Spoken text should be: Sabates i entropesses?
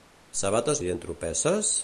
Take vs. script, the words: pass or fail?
pass